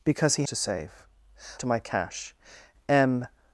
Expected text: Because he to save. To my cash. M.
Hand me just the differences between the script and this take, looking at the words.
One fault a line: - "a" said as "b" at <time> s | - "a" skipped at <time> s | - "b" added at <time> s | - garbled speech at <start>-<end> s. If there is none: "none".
none